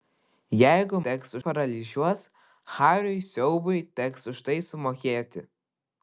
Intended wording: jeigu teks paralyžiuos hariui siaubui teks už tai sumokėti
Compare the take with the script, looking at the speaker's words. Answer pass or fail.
pass